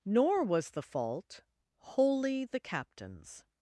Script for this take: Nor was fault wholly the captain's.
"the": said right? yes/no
yes